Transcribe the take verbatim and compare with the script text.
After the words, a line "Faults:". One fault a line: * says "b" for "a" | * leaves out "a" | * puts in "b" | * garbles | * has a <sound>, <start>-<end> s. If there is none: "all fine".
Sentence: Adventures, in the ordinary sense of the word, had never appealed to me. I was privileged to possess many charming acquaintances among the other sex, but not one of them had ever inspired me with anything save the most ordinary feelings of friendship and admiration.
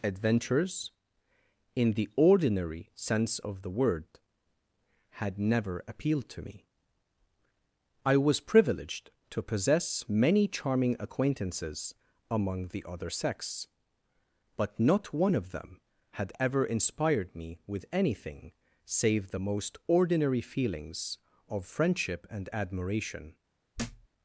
Adventures, in the ordinary sense of the word, had never appealed to me. I was privileged to possess many charming acquaintances among the other sex, but not one of them had ever inspired me with anything save the most ordinary feelings of friendship and admiration.
Faults:
* has a thud, 23.7-24.1 s